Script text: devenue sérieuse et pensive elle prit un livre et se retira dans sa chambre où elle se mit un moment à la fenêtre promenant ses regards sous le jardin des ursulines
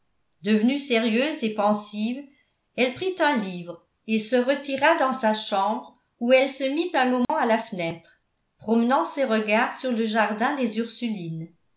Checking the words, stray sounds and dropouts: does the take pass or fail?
fail